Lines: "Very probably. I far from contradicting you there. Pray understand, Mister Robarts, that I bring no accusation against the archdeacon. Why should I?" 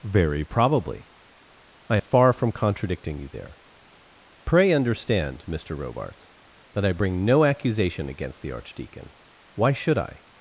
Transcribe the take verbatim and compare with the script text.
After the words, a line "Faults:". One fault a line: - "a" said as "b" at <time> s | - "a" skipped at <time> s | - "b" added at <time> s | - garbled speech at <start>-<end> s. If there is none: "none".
"Very probably. I far from contradicting you there. Pray understand, Mister Robarts, that I bring no accusation against the archdeacon. Why should I?"
Faults:
none